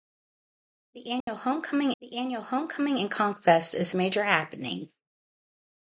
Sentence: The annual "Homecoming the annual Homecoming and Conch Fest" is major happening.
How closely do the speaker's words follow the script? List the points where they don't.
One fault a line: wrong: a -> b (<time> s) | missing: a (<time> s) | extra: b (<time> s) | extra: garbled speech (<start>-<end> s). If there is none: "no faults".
no faults